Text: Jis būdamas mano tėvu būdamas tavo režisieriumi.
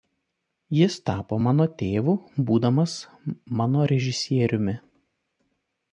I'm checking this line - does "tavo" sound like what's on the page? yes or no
no